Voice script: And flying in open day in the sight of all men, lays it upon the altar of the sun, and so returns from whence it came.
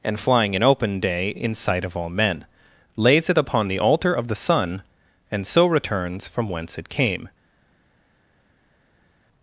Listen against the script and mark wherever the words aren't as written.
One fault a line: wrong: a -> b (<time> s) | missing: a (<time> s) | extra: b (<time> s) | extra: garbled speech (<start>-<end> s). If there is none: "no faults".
missing: the (1.5 s)